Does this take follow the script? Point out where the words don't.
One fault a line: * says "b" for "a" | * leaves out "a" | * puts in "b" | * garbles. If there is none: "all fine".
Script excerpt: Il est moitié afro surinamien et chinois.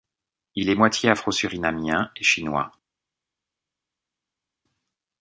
all fine